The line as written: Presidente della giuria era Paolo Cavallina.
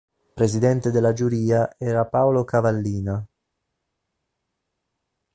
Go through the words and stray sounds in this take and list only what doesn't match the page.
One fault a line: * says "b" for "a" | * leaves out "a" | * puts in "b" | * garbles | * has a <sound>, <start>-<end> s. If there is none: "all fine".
all fine